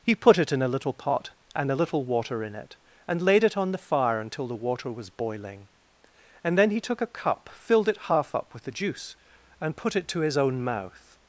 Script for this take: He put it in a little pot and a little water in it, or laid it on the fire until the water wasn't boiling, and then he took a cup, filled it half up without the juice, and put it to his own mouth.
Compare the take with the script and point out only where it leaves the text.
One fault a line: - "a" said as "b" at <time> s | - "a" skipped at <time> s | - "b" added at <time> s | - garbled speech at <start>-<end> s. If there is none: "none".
- "or" said as "and" at 3.1 s
- "wasn't" said as "was" at 4.9 s
- "without" said as "with" at 8.5 s